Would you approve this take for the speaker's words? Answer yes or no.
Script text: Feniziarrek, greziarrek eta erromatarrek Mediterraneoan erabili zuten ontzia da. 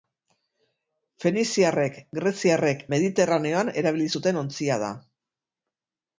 no